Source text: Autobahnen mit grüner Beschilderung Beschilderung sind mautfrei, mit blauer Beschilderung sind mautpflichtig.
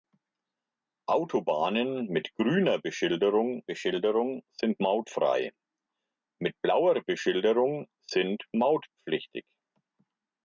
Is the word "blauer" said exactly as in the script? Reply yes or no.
yes